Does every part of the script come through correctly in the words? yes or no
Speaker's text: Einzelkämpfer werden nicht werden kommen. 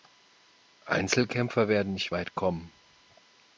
no